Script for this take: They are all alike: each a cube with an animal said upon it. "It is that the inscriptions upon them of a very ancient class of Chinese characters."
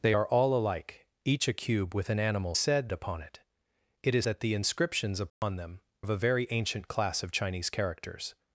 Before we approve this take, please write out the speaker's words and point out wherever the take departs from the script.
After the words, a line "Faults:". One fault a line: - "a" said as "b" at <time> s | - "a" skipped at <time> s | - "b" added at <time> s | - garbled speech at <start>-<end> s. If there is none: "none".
They are all alike: each a cube with an animal said upon it. "It is that the inscriptions upon them of a very ancient class of Chinese characters."
Faults:
none